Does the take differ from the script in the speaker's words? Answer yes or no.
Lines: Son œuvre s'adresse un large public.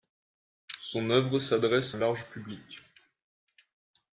no